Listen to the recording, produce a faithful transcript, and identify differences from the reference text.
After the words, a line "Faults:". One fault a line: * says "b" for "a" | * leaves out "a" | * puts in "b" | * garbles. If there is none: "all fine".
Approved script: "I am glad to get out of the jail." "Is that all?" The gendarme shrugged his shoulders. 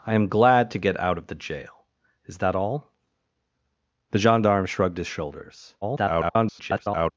"I am glad to get out of the jail." "Is that all?" The gendarme shrugged his shoulders. [garbled]
Faults:
* garbles